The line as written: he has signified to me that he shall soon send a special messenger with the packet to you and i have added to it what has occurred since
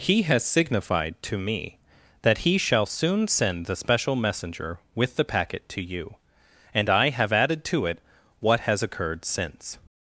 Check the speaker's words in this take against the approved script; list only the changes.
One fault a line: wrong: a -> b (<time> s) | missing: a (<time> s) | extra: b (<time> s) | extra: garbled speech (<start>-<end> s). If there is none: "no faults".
wrong: a -> the (3.7 s)